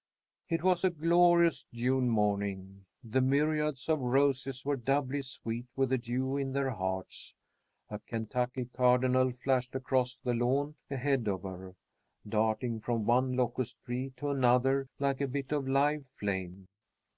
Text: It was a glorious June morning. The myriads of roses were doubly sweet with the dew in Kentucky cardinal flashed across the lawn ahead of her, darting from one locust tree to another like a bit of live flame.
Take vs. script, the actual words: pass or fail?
fail